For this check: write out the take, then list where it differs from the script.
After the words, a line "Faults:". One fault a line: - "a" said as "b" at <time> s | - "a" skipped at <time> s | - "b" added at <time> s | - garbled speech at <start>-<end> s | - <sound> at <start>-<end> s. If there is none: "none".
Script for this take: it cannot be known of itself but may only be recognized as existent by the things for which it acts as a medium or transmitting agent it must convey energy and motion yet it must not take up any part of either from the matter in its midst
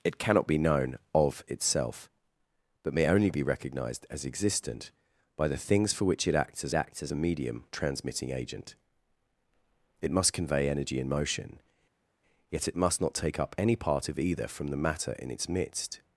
it cannot be known of itself but may only be recognized as existent by the things for which it acts as acts as a medium transmitting agent it must convey energy and motion yet it must not take up any part of either from the matter in its midst
Faults:
- "acts as" added at 6.7 s
- "or" skipped at 7.6 s